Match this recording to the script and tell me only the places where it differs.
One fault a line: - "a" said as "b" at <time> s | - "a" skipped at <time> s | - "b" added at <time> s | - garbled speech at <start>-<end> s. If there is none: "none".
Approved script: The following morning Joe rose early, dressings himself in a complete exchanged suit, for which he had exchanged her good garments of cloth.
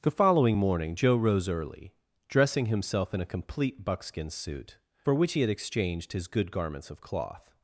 - "dressings" said as "dressing" at 2.3 s
- "exchanged" said as "buckskin" at 3.8 s
- "her" said as "his" at 6.1 s